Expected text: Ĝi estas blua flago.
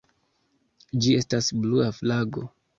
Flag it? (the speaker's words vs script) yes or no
no